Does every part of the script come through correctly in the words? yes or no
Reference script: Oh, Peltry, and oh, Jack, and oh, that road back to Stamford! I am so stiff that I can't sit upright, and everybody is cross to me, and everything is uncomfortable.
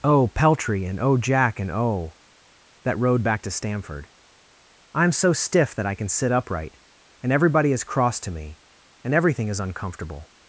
no